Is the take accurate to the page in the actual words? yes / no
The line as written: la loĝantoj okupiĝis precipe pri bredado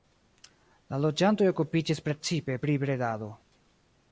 yes